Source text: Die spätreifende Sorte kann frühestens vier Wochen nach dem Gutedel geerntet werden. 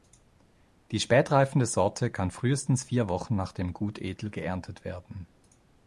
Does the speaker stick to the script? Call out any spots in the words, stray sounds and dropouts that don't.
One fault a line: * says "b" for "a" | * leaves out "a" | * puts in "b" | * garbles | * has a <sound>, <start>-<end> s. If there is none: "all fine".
all fine